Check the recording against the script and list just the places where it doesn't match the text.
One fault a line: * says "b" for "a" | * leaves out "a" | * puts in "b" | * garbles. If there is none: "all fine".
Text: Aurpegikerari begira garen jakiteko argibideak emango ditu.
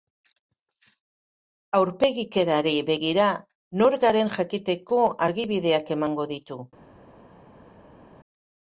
* puts in "nor"